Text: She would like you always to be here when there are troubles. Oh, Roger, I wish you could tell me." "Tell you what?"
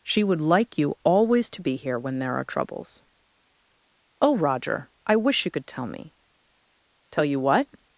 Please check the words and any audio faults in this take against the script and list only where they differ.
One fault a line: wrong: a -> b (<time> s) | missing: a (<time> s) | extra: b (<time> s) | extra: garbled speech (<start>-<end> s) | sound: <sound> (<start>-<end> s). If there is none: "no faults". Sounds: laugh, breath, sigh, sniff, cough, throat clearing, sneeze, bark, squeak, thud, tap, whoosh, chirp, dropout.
no faults